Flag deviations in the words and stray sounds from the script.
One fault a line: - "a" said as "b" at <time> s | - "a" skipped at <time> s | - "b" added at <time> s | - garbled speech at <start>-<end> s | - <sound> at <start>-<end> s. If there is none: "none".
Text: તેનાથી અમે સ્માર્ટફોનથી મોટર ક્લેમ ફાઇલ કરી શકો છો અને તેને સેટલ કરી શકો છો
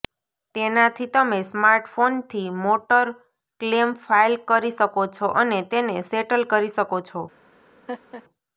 - "અમે" said as "તમે" at 1.1 s
- laugh at 7.9-8.2 s